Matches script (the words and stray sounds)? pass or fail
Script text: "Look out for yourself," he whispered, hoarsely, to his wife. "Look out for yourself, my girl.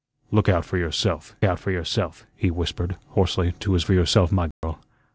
fail